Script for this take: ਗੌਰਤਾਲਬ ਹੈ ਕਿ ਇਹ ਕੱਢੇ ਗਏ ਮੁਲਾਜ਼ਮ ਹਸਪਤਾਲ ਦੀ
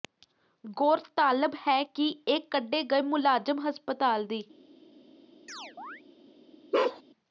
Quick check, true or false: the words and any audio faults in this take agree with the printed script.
false